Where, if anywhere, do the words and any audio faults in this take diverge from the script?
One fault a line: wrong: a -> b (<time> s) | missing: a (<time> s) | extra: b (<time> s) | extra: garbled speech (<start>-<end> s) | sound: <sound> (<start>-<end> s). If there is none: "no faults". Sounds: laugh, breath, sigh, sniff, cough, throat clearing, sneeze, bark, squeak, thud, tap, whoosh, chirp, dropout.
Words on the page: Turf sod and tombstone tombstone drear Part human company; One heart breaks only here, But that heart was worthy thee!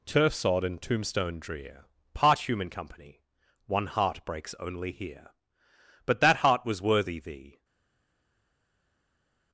missing: tombstone (1.4 s)